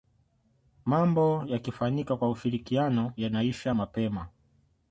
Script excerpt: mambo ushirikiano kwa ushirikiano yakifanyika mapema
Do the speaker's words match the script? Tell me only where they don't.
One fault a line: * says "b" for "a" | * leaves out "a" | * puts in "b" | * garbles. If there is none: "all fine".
* says "yakifanyika" for "ushirikiano"
* says "yanaisha" for "yakifanyika"